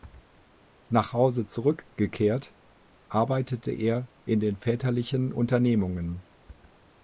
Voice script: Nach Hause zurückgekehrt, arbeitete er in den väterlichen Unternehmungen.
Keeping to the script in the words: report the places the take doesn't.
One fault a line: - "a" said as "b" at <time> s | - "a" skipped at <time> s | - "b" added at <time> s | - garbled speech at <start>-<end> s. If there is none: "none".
none